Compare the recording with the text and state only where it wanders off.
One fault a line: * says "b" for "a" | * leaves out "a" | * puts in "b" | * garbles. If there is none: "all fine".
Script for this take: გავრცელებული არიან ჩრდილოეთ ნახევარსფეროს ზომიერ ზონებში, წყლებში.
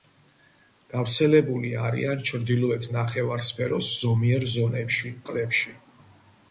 all fine